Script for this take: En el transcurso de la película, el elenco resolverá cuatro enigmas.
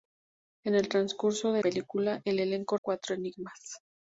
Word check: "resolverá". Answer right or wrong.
wrong